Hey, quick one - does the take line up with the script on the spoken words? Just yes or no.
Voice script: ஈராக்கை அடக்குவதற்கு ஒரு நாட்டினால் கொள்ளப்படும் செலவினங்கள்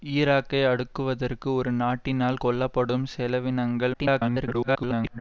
no